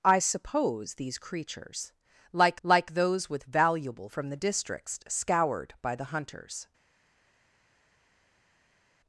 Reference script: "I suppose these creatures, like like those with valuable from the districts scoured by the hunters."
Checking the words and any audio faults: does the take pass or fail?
pass